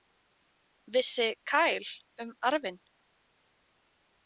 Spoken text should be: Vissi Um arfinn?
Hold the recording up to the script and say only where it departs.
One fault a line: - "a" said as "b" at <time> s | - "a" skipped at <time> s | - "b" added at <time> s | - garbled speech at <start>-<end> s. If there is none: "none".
- "Kyle" added at 1.5 s